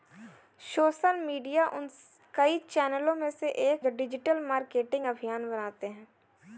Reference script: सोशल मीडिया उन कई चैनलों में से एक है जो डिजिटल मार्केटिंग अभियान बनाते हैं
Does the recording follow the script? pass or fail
fail